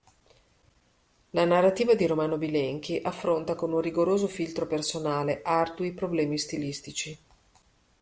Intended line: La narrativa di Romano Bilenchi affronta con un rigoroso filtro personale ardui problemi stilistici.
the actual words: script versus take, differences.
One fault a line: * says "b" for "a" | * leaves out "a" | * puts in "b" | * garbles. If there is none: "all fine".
all fine